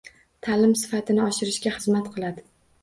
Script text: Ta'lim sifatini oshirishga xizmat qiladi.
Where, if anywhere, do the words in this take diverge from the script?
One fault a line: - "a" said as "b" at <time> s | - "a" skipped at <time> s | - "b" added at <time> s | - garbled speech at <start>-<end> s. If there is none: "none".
none